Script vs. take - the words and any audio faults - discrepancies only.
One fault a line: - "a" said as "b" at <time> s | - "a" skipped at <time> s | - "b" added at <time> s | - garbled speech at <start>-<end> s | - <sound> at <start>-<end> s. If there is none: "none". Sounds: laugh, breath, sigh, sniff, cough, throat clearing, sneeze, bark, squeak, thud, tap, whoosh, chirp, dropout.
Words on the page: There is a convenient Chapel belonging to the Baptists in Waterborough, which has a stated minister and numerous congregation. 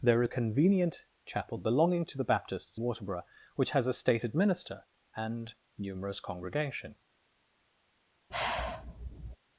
- "is" skipped at 0.2 s
- "in" skipped at 2.8 s
- sigh at 8.3-9.4 s